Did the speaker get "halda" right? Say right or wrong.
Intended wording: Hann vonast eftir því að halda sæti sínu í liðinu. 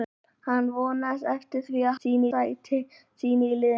wrong